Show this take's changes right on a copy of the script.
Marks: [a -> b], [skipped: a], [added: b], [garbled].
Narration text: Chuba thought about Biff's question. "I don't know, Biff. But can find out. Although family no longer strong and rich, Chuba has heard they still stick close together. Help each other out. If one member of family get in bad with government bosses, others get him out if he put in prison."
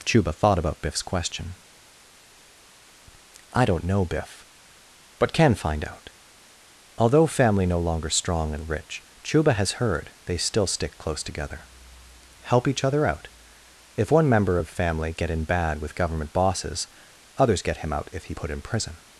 Chuba thought about Biff's question. "I don't know, Biff. But can find out. Although family no longer strong and rich, Chuba has heard they still stick close together. Help each other out. If one member of family get in bad with government bosses, others get him out if he put in prison."